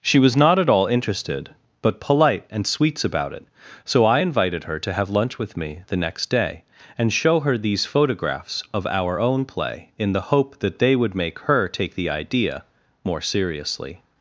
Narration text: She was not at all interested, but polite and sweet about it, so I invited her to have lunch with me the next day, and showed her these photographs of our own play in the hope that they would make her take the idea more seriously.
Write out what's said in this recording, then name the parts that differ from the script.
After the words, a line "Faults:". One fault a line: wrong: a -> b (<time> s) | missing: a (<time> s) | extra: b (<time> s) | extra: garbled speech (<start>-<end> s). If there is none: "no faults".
She was not at all interested, but polite and sweets about it, so I invited her to have lunch with me the next day, and show her these photographs of our own play in the hope that they would make her take the idea more seriously.
Faults:
wrong: sweet -> sweets (2.6 s)
wrong: showed -> show (7.1 s)